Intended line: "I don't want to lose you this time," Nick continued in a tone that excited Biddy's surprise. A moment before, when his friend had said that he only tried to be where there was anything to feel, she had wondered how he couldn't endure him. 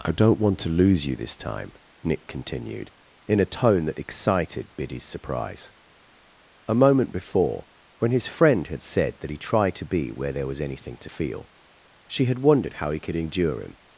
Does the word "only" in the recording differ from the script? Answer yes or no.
yes